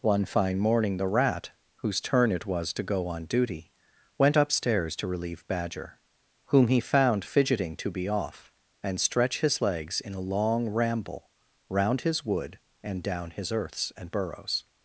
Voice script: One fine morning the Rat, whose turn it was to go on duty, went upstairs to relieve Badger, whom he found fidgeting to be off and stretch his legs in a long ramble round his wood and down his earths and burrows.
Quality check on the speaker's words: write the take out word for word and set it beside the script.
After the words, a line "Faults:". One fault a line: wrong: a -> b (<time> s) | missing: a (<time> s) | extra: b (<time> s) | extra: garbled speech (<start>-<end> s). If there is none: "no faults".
One fine morning the Rat, whose turn it was to go on duty, went upstairs to relieve Badger, whom he found fidgeting to be off and stretch his legs in a long ramble round his wood and down his earths and burrows.
Faults:
no faults